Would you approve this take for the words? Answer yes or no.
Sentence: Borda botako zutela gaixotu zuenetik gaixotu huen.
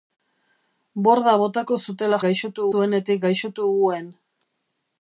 yes